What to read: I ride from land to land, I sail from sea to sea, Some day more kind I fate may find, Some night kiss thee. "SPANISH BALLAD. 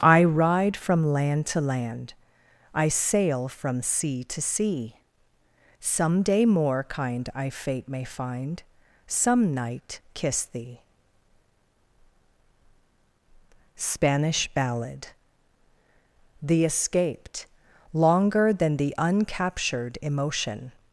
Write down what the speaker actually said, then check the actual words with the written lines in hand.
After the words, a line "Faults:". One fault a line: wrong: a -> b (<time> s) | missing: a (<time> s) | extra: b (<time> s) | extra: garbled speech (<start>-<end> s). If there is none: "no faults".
I ride from land to land, I sail from sea to sea, Some day more kind I fate may find, Some night kiss thee. "SPANISH BALLAD. THE escaped, longer than the uncaptured emotion
Faults:
extra: THE escaped longer than the uncaptured emotion (16.4 s)